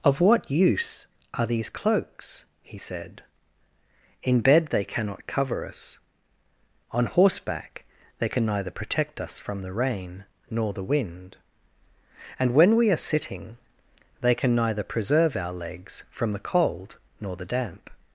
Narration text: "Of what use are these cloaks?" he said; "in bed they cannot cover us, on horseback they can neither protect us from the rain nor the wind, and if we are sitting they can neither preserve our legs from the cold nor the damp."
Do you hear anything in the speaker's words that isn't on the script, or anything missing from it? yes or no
yes